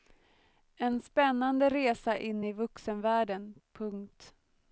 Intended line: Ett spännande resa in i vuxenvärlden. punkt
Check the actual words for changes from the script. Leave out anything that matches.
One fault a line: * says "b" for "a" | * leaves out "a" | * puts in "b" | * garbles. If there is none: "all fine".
* says "En" for "Ett"